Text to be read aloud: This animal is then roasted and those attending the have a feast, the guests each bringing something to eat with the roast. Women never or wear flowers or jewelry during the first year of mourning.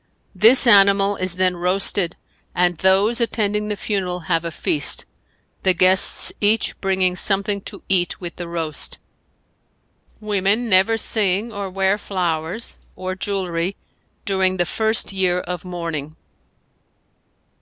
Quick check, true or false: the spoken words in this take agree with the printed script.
false